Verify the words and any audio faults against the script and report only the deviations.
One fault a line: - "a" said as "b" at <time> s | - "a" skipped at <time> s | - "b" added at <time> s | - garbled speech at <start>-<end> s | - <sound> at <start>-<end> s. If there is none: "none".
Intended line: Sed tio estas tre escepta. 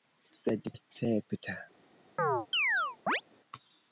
- "tio estas tre" skipped at 0.7 s
- chirp at 2.2-3.2 s